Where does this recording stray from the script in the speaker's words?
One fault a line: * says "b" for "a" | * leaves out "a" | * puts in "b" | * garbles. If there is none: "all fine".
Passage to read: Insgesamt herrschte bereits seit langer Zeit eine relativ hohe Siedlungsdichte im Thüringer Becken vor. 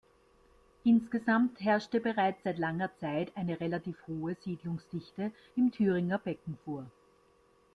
all fine